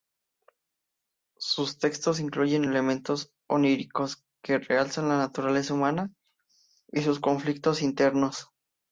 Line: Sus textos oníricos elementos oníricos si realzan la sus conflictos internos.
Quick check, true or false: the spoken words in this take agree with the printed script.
false